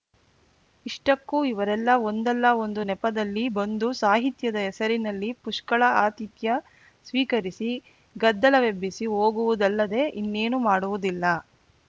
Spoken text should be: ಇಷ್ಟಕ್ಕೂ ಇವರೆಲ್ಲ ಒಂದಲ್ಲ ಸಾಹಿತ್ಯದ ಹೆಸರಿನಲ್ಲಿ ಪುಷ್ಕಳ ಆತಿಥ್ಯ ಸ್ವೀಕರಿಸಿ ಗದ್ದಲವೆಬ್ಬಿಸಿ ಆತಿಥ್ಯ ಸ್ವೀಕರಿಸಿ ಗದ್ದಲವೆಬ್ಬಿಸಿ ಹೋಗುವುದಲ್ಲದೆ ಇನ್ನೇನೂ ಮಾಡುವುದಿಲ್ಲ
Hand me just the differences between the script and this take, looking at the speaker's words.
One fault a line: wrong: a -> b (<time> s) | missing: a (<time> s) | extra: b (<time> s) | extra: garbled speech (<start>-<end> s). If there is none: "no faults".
extra: ಒಂದು ನೆಪದಲ್ಲಿ ಬಂದು (2.6 s)
missing: ಆತಿಥ್ಯ ಸ್ವೀಕರಿಸಿ ಗದ್ದಲವೆಬ್ಬಿಸಿ (9.1 s)